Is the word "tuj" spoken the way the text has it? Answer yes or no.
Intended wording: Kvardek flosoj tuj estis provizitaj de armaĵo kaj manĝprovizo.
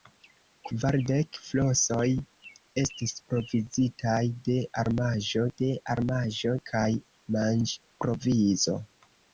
no